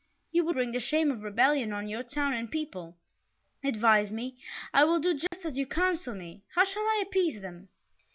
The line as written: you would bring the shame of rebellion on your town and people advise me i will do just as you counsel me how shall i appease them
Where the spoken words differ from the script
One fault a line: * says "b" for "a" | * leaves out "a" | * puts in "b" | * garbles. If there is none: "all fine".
all fine